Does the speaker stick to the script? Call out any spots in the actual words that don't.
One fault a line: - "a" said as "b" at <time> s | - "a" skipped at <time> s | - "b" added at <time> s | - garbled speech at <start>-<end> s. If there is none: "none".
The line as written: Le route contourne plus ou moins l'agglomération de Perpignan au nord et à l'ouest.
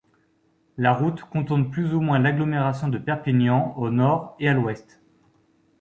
- "Le" said as "La" at 0.8 s